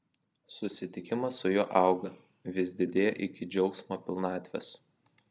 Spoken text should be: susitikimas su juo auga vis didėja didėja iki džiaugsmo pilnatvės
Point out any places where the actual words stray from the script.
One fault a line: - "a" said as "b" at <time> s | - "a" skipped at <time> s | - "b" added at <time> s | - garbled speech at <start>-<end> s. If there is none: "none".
- "didėja" skipped at 3.1 s